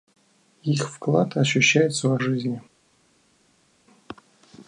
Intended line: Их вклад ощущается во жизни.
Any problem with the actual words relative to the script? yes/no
no